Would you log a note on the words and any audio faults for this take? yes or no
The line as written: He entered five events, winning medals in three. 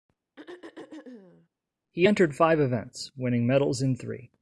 yes